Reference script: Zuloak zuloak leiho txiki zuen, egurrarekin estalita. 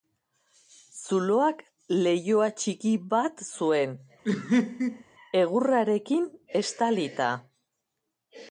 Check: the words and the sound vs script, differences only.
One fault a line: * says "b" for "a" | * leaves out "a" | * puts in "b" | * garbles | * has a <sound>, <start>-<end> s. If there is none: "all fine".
* leaves out "zuloak"
* puts in "bat"
* has a laugh, 4.2-5.0 s